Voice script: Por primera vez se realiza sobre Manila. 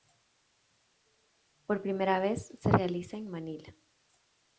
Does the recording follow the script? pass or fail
fail